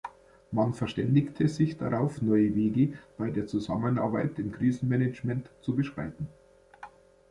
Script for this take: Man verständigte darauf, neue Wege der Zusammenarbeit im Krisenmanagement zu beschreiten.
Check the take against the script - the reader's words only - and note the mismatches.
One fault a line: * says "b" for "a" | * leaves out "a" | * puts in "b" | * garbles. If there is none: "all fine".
* puts in "sich"
* puts in "bei"